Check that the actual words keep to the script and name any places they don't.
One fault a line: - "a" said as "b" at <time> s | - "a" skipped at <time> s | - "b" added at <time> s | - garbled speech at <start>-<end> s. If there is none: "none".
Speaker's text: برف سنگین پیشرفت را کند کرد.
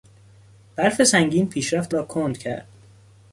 none